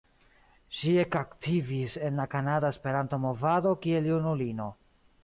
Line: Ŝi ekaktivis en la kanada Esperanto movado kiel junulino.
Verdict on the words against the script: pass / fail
pass